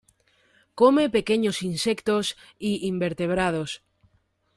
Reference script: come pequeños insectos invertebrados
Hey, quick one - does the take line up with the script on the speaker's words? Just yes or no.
no